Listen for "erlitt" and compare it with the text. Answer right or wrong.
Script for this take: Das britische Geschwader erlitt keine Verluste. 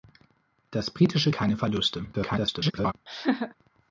wrong